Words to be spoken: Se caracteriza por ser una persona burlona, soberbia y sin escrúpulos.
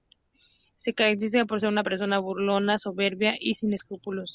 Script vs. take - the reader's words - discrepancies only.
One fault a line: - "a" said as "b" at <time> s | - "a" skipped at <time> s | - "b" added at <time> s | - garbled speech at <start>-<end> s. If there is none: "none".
none